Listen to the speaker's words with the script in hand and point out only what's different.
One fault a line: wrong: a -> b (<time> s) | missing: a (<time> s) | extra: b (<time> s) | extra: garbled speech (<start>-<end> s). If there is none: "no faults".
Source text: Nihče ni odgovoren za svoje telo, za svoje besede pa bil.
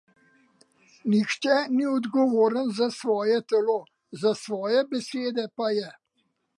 wrong: bil -> je (5.7 s)